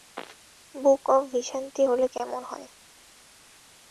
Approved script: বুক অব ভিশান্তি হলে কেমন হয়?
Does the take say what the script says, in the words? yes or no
yes